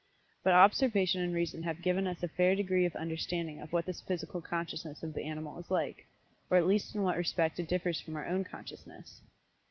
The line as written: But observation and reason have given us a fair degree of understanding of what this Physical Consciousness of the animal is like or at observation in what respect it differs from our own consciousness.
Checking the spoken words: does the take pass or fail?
fail